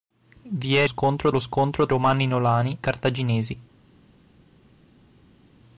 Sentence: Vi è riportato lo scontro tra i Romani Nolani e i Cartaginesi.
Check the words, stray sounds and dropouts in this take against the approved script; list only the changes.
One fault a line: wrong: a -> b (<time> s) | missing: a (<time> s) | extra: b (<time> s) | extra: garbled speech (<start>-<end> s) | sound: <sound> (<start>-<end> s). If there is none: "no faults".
wrong: riportato -> scontro (0.9 s)
missing: tra i (1.9 s)
missing: e i (2.8 s)